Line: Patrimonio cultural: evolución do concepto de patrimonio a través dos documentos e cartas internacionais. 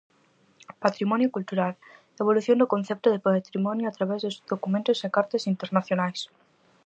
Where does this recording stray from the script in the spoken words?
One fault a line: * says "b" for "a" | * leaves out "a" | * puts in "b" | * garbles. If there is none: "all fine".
all fine